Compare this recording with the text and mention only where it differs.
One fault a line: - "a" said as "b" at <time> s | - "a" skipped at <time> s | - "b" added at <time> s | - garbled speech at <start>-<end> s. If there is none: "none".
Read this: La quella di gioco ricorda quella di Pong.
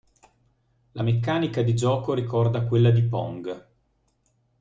- "quella" said as "meccanica" at 1.0 s